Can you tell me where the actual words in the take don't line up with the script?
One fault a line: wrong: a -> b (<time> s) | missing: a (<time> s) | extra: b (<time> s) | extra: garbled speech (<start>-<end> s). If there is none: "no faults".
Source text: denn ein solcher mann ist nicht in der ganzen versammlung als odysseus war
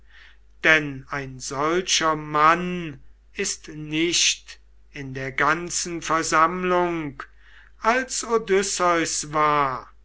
no faults